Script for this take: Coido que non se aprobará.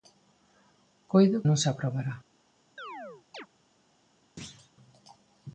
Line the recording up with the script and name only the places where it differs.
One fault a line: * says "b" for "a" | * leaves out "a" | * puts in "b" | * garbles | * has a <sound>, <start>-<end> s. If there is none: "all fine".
* leaves out "que"
* has a chirp, 2.8-3.5 s
* has a thud, 4.4-4.7 s